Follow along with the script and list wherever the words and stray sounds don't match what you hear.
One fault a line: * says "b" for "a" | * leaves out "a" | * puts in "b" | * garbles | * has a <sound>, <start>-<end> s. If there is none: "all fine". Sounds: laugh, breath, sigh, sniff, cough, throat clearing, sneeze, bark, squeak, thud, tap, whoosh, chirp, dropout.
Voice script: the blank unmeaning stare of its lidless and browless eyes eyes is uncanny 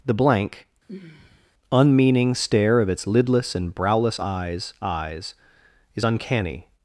* has a sigh, 0.9-1.5 s